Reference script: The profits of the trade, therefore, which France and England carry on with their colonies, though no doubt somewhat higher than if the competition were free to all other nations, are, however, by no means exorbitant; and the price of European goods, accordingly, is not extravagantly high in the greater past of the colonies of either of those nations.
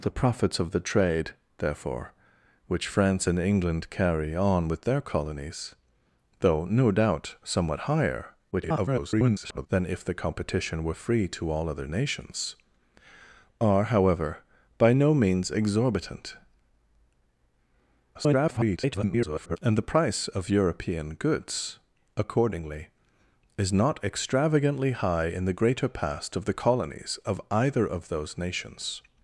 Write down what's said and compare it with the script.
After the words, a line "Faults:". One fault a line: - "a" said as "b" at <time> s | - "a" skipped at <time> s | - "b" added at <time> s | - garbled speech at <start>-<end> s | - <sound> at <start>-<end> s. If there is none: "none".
The profits of the trade, therefore, which France and England carry on with their colonies, though no doubt somewhat higher [garbled] than if the competition were free to all other nations, are, however, by no means exorbitant; [garbled] and the price of European goods, accordingly, is not extravagantly high in the greater past of the colonies of either of those nations.
Faults:
- garbled speech at 8.5-9.7 s
- garbled speech at 18.1-19.6 s